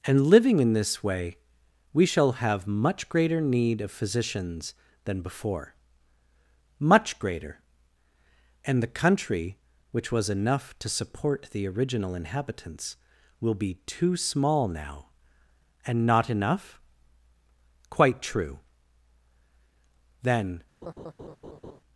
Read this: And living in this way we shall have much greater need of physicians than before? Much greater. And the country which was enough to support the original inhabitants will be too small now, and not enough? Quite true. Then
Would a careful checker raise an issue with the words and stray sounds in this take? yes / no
yes